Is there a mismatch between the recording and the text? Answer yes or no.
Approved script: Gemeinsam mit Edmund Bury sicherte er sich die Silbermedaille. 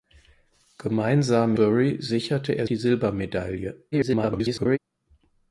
yes